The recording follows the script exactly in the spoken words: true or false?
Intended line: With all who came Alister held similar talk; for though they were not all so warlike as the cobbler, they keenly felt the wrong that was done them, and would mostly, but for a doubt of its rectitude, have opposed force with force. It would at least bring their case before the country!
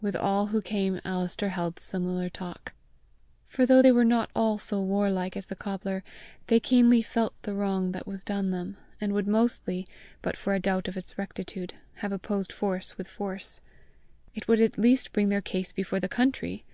true